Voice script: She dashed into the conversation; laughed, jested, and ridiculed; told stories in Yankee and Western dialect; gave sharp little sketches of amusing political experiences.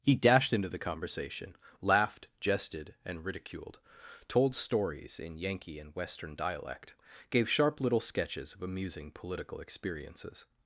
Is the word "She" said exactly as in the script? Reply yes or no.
no